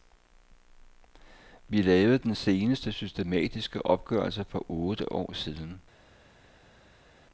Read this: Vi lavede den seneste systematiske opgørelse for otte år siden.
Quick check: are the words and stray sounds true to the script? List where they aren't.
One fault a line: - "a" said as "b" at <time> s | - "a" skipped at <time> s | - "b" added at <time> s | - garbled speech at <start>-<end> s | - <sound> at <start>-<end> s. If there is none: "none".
none